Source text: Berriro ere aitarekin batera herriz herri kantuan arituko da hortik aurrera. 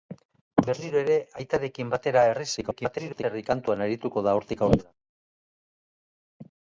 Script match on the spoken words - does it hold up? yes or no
no